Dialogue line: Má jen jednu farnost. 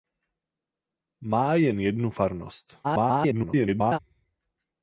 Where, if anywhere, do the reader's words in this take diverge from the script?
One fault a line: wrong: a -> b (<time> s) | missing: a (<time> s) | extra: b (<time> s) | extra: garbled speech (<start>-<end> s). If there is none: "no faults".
extra: garbled speech (2.8-4.0 s)